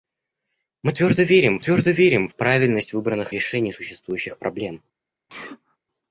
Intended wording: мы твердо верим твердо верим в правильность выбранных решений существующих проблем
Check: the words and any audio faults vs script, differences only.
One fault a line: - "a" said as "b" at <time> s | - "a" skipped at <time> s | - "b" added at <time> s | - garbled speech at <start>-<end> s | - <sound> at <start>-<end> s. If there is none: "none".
- sneeze at 5.3-5.8 s